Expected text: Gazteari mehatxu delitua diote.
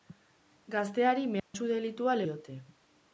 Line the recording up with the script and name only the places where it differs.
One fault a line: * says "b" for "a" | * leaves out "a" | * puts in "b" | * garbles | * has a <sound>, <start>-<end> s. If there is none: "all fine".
* has a dropout, 1.4-1.5 s